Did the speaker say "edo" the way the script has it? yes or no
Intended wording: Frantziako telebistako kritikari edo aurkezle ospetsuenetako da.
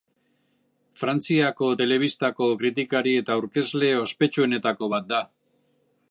no